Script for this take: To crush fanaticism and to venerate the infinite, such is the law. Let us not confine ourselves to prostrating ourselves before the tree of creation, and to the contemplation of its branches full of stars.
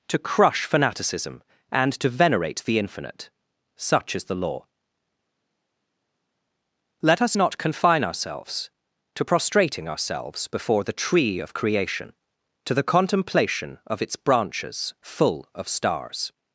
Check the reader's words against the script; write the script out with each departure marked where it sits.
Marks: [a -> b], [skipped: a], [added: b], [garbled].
To crush fanaticism and to venerate the infinite, such is the law. Let us not confine ourselves to prostrating ourselves before the tree of creation, [skipped: and] to the contemplation of its branches full of stars.